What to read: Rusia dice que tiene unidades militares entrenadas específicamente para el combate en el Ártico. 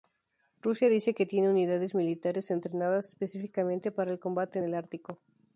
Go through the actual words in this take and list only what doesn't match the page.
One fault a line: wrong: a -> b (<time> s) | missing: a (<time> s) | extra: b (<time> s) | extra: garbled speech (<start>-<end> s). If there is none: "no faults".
no faults